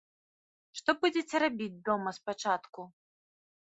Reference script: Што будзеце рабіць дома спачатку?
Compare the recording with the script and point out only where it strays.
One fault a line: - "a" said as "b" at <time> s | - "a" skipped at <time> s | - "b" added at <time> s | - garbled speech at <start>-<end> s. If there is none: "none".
none